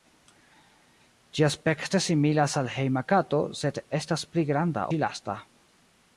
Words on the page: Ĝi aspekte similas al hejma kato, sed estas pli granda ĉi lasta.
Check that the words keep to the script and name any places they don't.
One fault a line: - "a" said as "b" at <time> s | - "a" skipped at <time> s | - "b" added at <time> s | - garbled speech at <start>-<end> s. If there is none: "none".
none